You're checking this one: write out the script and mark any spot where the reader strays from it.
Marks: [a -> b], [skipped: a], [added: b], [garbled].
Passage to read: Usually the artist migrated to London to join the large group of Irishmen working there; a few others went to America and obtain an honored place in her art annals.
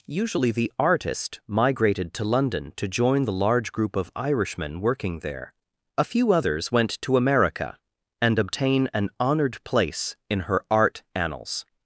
Usually the artist migrated to London to join the large group of Irishmen working there; a few others went to America and obtain an honored place in her art annals.